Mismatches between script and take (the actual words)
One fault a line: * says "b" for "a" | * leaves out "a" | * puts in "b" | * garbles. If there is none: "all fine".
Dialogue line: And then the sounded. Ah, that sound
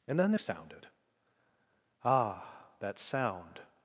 all fine